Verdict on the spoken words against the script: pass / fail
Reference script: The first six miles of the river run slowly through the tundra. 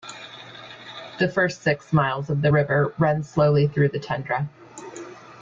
pass